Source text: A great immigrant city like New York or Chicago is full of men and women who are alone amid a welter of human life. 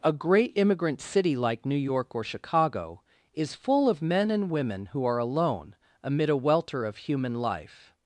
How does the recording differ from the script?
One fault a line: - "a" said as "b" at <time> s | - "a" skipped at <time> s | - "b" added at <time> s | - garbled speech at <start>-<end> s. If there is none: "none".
none